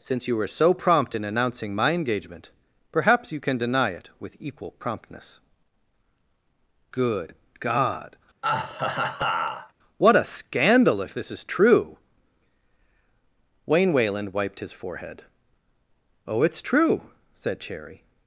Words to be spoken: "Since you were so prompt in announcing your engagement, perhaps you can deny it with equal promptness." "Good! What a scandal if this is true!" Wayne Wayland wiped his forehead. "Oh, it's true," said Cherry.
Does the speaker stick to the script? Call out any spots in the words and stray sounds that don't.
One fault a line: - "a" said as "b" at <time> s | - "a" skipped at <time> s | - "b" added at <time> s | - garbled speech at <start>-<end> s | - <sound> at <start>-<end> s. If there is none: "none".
- "your" said as "my" at 1.7 s
- "God" added at 7.6 s
- laugh at 8.4-9.7 s